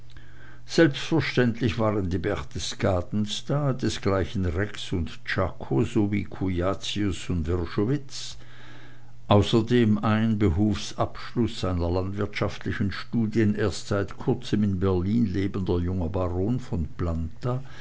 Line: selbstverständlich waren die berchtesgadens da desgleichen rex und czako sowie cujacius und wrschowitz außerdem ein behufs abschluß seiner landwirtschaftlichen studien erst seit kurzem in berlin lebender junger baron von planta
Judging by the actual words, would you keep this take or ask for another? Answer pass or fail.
pass